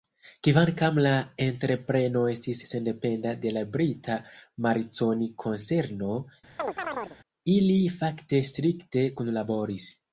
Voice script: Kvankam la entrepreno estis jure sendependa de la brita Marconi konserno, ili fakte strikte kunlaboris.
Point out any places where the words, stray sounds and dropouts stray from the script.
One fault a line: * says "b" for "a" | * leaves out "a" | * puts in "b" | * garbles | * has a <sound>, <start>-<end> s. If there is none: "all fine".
* leaves out "jure"
* has a chirp, 6.6-7.2 s